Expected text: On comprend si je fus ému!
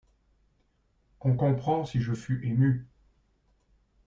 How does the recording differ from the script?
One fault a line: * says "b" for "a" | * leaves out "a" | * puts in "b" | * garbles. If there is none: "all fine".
all fine